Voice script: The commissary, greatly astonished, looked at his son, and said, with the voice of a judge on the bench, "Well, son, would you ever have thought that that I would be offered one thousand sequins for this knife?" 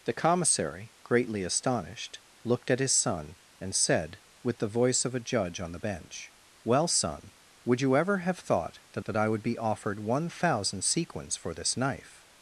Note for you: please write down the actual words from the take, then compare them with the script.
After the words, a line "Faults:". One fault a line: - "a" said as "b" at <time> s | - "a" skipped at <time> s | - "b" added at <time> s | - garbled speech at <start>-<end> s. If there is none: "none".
The commissary, greatly astonished, looked at his son, and said, with the voice of a judge on the bench, "Well, son, would you ever have thought that that I would be offered one thousand sequins for this knife?"
Faults:
none